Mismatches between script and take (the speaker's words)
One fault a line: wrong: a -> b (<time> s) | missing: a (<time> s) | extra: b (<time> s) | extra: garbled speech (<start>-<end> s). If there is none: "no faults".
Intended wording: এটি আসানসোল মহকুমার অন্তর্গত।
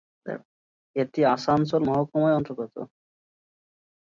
no faults